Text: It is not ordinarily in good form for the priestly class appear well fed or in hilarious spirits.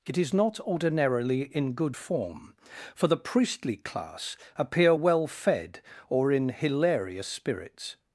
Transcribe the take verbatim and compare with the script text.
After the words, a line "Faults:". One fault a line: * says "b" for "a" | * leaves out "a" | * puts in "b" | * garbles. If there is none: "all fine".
It is not ordinarily in good form for the priestly class appear well fed or in hilarious spirits.
Faults:
all fine